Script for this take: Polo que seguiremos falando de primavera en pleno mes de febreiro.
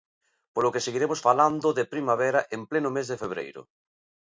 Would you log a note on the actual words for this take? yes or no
no